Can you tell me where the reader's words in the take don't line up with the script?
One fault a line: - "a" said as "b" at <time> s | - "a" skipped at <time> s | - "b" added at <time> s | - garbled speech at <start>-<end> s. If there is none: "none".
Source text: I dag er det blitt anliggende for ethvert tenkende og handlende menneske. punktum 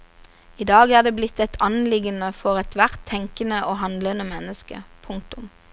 - "et" added at 1.4 s